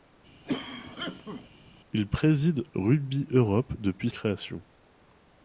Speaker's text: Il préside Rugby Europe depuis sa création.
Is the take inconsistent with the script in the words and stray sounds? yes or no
yes